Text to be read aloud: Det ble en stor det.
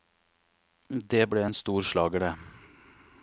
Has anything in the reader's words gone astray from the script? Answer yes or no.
yes